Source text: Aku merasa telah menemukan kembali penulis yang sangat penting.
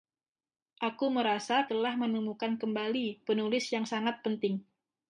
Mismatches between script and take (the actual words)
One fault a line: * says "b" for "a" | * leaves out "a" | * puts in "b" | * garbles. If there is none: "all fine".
all fine